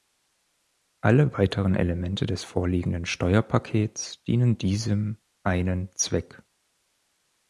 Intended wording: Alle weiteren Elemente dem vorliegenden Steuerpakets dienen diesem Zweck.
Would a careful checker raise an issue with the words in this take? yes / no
yes